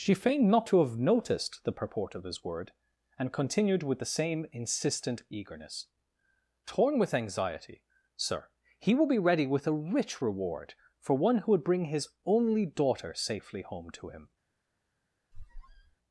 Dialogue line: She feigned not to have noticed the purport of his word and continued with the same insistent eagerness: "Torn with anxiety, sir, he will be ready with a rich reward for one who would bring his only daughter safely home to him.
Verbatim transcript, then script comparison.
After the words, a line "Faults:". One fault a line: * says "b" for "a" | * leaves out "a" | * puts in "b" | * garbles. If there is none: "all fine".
She feigned not to have noticed the purport of his word and continued with the same insistent eagerness: "Torn with anxiety, sir, he will be ready with a rich reward for one who would bring his only daughter safely home to him.
Faults:
all fine